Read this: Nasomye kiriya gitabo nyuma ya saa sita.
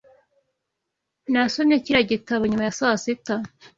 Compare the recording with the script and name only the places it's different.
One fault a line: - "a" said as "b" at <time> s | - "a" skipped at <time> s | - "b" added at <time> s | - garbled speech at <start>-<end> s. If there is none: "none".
none